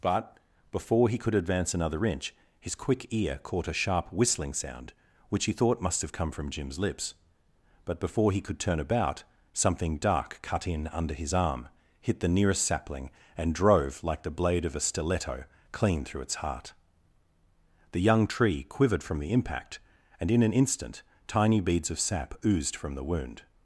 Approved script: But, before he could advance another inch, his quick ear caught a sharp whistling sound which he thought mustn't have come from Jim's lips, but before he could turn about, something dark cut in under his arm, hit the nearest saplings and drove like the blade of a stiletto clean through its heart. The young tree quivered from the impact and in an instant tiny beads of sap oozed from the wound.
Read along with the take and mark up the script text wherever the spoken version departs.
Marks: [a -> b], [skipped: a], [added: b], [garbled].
But, before he could advance another inch, his quick ear caught a sharp whistling sound which he thought [mustn't -> must] have come from Jim's lips, but before he could turn about, something dark cut in under his arm, hit the nearest [saplings -> sapling] and drove like the blade of a stiletto clean through its heart. The young tree quivered from the impact and in an instant tiny beads of sap oozed from the wound.